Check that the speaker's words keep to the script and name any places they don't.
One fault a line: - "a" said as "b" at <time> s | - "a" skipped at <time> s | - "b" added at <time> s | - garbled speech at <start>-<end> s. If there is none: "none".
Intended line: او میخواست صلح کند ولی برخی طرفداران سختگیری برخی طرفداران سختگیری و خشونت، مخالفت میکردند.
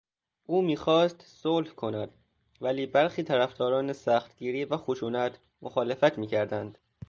- "برخی طرفداران سختگیری" skipped at 4.7 s